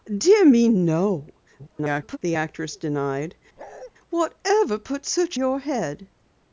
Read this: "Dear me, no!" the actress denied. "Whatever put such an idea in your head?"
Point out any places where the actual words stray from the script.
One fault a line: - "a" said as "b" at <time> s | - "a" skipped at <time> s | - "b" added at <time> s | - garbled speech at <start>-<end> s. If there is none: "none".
- garbled speech at 1.6-2.2 s
- "an idea in" skipped at 5.4 s